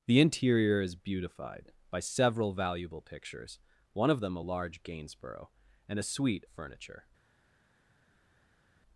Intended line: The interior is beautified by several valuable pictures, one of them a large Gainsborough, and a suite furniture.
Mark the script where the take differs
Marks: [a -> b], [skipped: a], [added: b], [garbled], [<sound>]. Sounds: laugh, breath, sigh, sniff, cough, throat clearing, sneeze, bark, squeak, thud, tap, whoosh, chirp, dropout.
The interior is beautified by several valuable pictures, one of them a large Gainsborough, and a suite furniture.